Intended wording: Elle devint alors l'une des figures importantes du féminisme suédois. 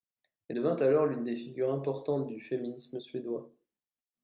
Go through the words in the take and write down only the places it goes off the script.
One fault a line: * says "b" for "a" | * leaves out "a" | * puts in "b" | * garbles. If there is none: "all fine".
all fine